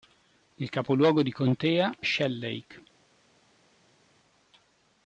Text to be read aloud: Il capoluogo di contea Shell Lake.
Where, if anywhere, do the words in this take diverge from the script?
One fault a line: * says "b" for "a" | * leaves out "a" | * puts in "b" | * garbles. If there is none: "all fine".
all fine